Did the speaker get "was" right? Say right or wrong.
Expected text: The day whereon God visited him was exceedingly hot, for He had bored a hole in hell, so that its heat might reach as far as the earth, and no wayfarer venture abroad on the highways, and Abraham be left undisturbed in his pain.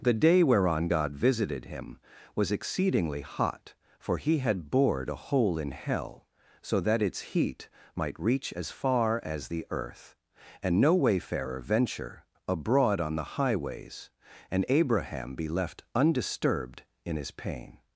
right